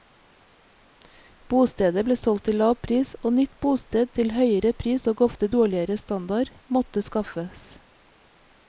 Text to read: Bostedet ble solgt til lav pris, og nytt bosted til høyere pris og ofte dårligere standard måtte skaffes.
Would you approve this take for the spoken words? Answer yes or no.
yes